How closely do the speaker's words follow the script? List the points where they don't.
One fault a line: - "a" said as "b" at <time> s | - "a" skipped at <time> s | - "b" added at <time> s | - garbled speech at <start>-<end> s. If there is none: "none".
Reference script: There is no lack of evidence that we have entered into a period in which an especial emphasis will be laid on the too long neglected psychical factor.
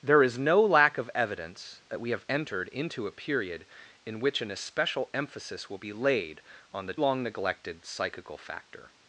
- "too" skipped at 7.0 s